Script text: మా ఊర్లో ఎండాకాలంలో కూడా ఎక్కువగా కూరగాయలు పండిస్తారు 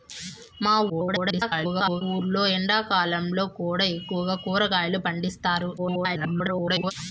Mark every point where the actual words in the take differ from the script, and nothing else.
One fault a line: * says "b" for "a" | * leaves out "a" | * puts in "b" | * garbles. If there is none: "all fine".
* garbles
* garbles